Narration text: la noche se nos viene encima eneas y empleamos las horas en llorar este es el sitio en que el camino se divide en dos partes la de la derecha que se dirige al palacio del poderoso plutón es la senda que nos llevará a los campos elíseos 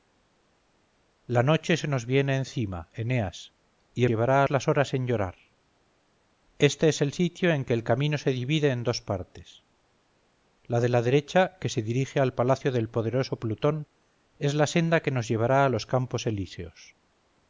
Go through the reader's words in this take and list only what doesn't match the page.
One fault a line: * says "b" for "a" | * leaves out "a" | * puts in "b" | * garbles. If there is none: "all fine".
* says "llevará" for "empleamos"